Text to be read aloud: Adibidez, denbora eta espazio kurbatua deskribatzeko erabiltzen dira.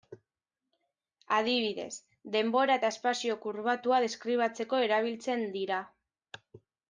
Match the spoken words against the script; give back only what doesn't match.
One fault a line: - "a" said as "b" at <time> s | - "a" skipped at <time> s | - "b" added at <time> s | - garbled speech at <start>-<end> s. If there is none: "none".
none